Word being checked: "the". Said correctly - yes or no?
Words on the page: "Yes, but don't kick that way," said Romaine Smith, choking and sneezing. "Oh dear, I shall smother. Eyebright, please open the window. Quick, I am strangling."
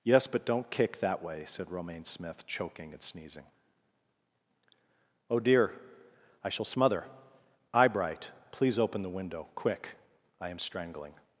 yes